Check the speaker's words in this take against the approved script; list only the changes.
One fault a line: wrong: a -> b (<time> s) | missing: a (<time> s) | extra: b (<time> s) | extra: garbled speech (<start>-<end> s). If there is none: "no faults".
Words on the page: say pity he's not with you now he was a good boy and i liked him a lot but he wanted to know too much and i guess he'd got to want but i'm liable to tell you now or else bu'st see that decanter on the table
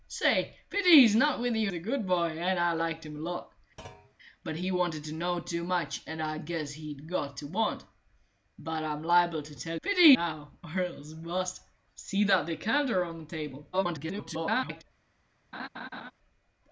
missing: now he was (1.7 s)
wrong: you -> pity (9.8 s)
extra: garbled speech (13.7-14.8 s)